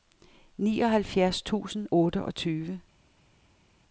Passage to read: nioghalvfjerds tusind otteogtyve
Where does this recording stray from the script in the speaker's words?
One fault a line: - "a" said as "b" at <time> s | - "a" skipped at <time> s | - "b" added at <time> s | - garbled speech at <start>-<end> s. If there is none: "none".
none